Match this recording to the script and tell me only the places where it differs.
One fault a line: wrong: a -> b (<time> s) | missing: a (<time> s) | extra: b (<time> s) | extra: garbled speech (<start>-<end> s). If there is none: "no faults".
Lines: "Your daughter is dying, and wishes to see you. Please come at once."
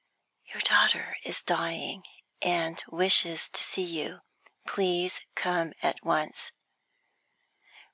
no faults